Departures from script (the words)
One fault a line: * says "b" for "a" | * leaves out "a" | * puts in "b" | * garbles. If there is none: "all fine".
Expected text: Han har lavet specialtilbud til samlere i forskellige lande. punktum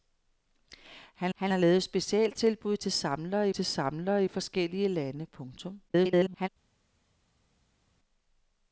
* puts in "han"
* puts in "til samlere"
* garbles